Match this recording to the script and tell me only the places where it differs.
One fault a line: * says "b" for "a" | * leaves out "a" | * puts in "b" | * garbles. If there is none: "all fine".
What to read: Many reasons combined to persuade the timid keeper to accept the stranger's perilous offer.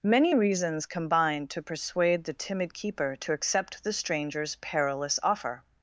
all fine